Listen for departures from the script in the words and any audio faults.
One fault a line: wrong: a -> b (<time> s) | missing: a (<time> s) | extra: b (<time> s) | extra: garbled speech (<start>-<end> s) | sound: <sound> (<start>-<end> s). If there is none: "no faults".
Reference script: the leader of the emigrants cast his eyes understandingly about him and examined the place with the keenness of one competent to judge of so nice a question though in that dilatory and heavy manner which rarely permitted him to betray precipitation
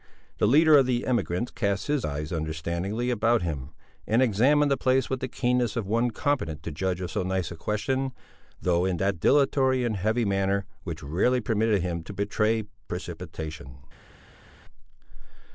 no faults